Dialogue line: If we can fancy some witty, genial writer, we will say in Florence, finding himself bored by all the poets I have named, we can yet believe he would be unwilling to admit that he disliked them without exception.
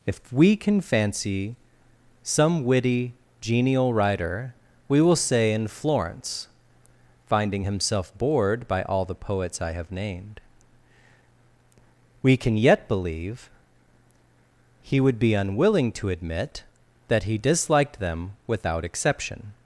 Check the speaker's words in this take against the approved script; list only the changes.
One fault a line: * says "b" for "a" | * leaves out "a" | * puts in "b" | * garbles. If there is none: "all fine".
all fine